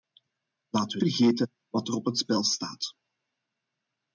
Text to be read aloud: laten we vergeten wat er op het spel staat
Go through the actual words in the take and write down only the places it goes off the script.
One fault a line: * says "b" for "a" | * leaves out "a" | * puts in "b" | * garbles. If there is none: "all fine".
all fine